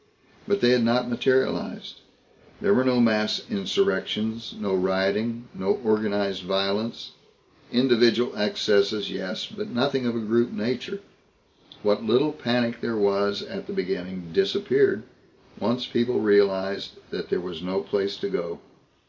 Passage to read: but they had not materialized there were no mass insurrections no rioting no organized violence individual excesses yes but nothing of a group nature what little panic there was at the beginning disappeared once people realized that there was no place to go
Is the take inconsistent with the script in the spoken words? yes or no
no